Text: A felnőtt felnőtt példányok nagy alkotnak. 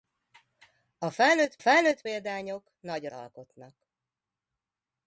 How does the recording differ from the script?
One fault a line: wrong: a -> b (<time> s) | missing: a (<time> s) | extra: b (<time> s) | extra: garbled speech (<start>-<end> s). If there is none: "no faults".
no faults